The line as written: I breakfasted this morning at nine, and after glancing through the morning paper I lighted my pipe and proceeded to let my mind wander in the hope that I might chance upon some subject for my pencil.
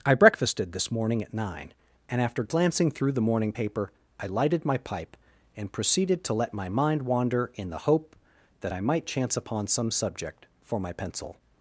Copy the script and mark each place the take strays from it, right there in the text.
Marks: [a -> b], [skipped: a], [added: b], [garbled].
I breakfasted this morning at nine, and after glancing through the morning paper I lighted my pipe and proceeded to let my mind wander in the hope that I might chance upon some subject for my pencil.